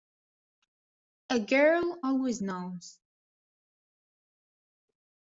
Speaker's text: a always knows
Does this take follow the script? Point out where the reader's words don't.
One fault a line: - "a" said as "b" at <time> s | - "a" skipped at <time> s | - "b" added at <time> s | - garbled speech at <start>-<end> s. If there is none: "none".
- "girl" added at 1.4 s